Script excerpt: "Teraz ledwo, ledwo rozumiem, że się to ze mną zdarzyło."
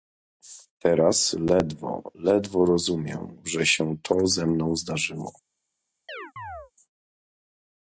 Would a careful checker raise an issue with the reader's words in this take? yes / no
no